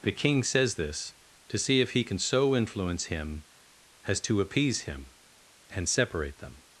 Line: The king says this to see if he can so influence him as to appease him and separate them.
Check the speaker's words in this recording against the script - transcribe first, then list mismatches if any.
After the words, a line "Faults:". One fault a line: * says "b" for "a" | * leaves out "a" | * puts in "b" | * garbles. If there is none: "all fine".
The king says this to see if he can so influence him as to appease him and separate them.
Faults:
all fine